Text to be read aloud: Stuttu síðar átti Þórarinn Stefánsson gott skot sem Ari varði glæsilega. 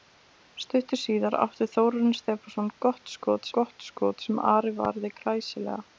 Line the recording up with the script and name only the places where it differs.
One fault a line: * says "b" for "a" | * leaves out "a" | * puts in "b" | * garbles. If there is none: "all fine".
* puts in "gott skot"